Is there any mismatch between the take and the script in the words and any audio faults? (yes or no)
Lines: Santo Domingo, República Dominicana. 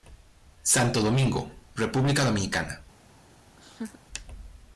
yes